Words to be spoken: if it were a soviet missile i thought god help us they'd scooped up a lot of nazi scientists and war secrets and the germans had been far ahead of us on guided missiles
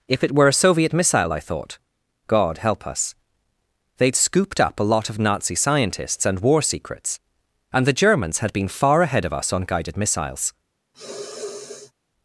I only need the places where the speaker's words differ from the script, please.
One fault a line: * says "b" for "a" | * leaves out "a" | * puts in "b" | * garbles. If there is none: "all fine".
all fine